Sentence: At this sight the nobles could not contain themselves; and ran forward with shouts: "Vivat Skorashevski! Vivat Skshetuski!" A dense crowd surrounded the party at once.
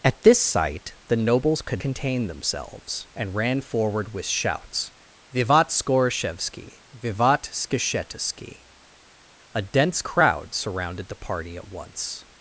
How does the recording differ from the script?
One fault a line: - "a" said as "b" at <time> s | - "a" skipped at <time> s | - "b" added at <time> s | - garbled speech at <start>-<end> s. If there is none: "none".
- "not" skipped at 1.8 s